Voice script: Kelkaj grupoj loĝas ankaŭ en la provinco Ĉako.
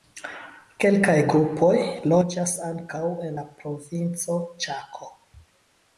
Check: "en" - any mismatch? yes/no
no